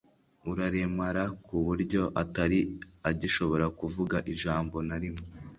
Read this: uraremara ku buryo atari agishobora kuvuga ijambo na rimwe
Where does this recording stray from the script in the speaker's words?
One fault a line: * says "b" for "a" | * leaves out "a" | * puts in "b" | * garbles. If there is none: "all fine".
all fine